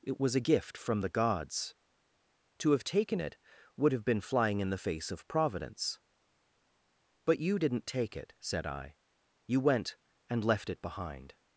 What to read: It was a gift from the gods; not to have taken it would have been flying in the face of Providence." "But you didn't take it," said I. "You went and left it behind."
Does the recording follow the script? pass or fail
fail